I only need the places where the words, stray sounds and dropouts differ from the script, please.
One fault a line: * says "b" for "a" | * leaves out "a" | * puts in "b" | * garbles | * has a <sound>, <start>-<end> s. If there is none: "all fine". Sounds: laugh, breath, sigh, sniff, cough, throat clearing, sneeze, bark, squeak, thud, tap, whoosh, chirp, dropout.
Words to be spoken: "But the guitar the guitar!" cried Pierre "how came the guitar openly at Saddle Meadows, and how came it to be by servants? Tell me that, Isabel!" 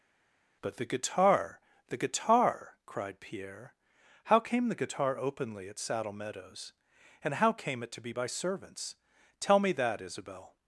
all fine